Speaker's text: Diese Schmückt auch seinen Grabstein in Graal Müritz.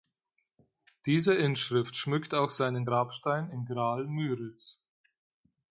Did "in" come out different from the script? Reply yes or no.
no